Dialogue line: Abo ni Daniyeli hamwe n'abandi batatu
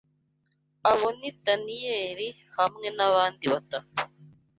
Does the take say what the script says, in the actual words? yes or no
yes